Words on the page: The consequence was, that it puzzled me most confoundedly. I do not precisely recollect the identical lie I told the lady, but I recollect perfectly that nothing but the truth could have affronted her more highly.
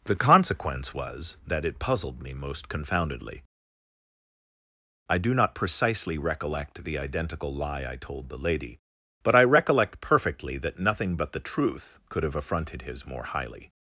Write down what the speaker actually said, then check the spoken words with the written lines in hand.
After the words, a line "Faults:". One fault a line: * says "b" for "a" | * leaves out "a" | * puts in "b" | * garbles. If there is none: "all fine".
The consequence was, that it puzzled me most confoundedly. I do not precisely recollect the identical lie I told the lady, but I recollect perfectly that nothing but the truth could have affronted his more highly.
Faults:
* says "his" for "her"